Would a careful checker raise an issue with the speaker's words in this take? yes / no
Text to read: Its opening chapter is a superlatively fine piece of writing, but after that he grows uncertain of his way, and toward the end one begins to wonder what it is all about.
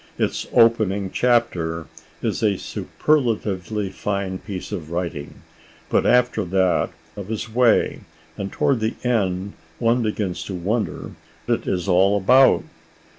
yes